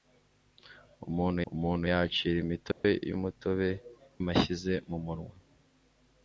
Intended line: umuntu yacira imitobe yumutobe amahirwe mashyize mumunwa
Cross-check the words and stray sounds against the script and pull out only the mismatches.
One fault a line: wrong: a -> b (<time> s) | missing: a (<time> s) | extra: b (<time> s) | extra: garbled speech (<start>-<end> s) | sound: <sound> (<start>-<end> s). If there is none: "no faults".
extra: umuntu (1.5 s)
sound: dropout (2.7-2.8 s)
missing: amahirwe (3.7 s)